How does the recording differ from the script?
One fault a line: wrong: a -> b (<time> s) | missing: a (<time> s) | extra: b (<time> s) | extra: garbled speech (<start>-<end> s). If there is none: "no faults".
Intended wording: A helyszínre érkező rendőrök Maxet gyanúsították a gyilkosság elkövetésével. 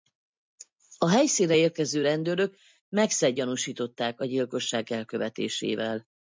no faults